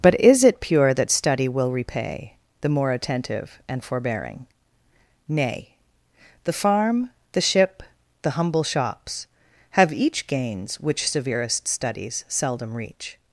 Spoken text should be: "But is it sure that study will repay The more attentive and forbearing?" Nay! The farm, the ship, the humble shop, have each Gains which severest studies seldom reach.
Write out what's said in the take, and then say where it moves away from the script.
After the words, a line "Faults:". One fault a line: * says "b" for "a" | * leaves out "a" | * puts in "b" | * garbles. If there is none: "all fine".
"But is it pure that study will repay The more attentive and forbearing?" Nay! The farm, the ship, the humble shops, have each Gains which severest studies seldom reach.
Faults:
* says "pure" for "sure"
* says "shops" for "shop"